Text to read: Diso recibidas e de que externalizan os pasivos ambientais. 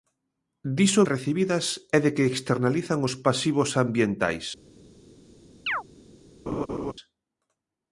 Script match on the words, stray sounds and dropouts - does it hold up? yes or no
no